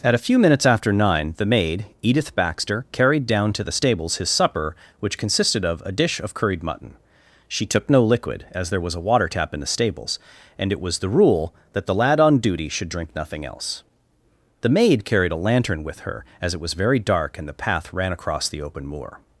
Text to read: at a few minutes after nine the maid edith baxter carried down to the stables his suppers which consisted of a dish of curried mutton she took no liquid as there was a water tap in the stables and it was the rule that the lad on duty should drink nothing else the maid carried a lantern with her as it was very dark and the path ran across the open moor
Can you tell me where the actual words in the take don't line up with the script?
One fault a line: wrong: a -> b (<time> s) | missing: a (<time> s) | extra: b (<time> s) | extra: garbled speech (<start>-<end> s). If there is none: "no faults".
wrong: suppers -> supper (4.3 s)